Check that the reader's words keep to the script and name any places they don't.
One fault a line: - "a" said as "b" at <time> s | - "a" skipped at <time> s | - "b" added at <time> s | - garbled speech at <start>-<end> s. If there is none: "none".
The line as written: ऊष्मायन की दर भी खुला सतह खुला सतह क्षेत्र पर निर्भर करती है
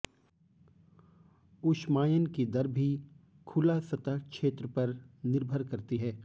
- "खुला सतह" skipped at 4.2 s